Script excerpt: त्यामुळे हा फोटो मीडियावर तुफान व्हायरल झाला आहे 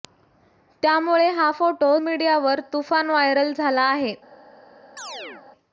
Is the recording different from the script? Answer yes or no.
no